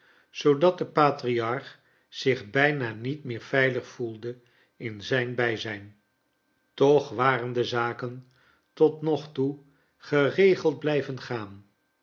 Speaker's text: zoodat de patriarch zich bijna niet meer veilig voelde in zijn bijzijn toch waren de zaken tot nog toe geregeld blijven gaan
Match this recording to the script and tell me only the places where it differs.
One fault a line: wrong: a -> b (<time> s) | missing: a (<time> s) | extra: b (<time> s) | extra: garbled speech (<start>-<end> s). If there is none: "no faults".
no faults